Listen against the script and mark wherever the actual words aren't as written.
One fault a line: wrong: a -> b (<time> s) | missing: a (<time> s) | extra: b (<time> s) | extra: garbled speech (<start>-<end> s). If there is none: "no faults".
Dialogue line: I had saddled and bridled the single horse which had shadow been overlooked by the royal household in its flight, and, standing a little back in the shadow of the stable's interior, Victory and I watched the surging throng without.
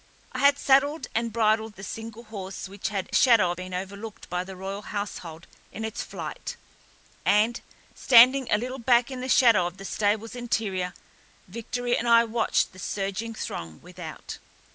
no faults